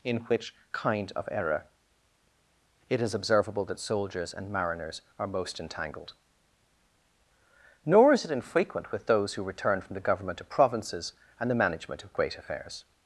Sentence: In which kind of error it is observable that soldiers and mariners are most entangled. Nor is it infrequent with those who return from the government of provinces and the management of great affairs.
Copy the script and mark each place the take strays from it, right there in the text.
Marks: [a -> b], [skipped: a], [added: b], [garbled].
In which kind of error it is observable that soldiers and mariners are most entangled. Nor is it infrequent with those who return from the government of provinces and the management of great affairs.